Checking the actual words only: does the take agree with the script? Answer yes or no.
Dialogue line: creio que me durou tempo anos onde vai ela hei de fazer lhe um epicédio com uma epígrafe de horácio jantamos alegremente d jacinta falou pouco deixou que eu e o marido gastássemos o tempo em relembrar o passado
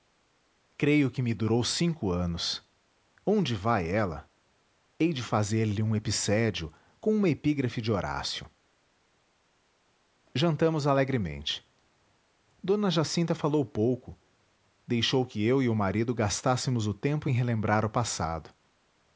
no